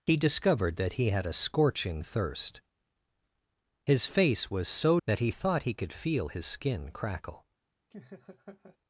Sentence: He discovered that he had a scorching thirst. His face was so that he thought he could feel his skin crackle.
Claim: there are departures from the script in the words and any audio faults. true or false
true